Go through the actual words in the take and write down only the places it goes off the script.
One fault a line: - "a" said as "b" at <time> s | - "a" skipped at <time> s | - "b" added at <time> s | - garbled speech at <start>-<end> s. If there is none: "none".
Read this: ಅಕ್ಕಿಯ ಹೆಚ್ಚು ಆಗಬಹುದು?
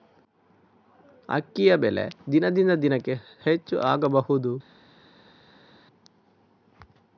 - "ಬೆಲೆ ದಿನದಿಂದ ದಿನಕೆ" added at 1.8 s